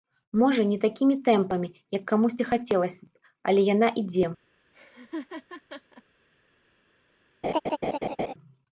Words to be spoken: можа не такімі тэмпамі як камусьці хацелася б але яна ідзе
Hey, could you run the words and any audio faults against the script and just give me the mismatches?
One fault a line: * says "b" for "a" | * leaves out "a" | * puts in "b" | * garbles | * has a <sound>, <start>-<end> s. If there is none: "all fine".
* has a laugh, 4.7-6.0 s
* has a laugh, 7.4-8.3 s